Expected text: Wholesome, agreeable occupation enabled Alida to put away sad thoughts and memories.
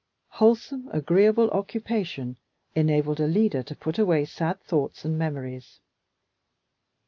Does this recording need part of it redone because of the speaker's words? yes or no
no